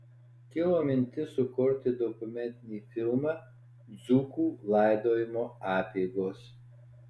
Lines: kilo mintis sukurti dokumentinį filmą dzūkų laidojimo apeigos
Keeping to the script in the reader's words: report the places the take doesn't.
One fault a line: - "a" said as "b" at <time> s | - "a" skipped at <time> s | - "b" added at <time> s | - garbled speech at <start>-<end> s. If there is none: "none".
none